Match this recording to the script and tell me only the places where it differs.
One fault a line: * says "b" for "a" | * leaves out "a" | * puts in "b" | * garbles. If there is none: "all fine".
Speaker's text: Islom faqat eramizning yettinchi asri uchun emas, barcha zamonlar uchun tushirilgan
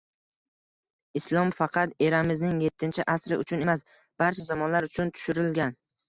all fine